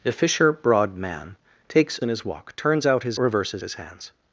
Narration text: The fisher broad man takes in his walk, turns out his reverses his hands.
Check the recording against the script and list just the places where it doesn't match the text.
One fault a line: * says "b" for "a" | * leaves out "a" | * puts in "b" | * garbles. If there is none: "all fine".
all fine